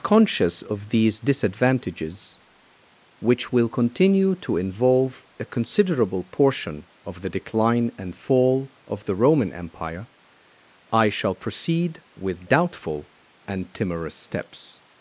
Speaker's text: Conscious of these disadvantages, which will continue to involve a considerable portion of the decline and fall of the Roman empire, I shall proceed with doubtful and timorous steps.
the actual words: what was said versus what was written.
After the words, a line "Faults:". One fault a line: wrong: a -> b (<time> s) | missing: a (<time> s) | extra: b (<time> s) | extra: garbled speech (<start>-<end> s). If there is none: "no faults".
Conscious of these disadvantages, which will continue to involve a considerable portion of the decline and fall of the Roman empire, I shall proceed with doubtful and timorous steps.
Faults:
no faults